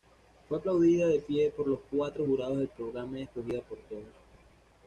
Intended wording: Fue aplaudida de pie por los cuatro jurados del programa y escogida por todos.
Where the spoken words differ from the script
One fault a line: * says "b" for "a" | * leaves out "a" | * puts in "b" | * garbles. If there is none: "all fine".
all fine